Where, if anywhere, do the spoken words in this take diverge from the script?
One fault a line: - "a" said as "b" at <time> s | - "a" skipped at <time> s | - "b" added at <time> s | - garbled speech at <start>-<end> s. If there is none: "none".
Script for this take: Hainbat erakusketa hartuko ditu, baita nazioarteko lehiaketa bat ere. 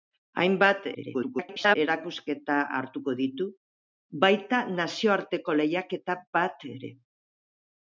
- garbled speech at 0.9-1.8 s